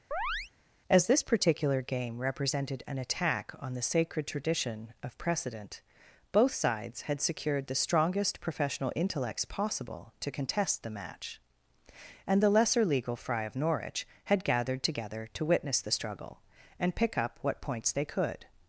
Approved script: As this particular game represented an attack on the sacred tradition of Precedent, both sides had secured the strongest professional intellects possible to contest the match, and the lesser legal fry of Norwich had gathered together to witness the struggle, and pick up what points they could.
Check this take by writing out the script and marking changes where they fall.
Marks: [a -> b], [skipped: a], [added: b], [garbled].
As this particular game represented an attack on the sacred tradition of Precedent, both sides had secured the strongest professional intellects possible to contest the match, and the lesser legal fry of Norwich had gathered together to witness the struggle, and pick up what points they could.